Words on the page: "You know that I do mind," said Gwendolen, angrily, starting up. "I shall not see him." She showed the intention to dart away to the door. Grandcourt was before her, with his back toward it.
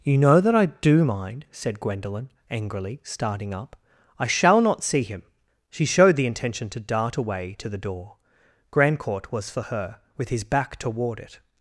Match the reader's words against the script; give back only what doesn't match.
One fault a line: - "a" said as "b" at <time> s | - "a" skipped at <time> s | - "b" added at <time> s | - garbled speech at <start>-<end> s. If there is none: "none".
- "before" said as "for" at 9.5 s